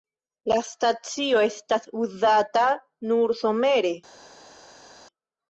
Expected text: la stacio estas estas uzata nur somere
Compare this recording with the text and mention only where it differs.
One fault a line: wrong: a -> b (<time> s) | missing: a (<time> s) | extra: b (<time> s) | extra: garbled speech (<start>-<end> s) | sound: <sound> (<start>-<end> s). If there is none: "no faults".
missing: estas (1.9 s)